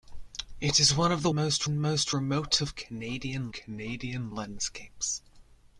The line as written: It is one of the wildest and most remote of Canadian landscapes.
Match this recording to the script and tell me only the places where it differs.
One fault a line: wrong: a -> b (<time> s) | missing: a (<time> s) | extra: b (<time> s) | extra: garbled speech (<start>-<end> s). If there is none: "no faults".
wrong: wildest -> most (1.3 s)
extra: Canadian (3.5 s)